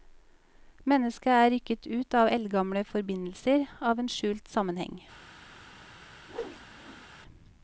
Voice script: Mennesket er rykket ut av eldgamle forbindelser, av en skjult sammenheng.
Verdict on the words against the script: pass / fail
pass